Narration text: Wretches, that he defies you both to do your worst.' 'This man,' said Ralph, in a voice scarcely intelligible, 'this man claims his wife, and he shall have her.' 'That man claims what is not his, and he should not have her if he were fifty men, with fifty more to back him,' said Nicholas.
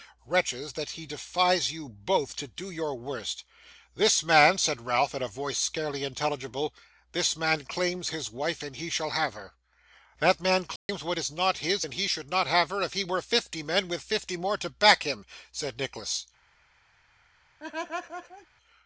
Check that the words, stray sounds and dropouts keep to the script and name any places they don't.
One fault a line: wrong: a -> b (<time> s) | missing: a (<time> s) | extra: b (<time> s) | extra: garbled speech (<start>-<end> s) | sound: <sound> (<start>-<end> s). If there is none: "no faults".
sound: dropout (10.8-10.9 s)
sound: laugh (17.6-18.5 s)